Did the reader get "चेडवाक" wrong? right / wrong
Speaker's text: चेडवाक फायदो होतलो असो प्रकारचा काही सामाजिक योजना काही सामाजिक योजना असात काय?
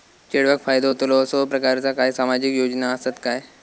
right